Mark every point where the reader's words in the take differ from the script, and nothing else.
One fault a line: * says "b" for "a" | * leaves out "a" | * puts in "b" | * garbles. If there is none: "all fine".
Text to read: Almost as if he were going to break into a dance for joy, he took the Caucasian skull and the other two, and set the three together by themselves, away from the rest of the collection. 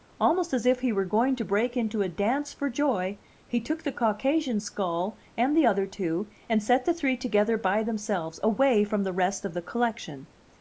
all fine